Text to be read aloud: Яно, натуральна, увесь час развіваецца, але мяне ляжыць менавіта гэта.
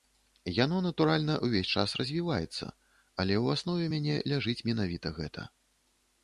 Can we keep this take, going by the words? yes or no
no